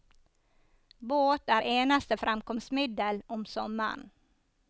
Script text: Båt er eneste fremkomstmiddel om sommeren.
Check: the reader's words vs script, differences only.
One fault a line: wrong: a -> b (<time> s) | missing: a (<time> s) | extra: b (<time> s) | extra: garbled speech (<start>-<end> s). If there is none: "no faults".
no faults